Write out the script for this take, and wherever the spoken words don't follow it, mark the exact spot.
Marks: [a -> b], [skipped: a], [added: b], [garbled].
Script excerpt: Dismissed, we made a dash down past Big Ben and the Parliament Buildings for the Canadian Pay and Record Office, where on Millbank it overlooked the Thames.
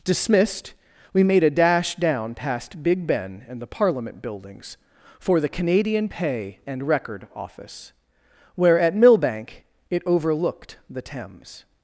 Dismissed, we made a dash down past Big Ben and the Parliament Buildings for the Canadian Pay and Record Office, where [on -> at] Millbank it overlooked the Thames.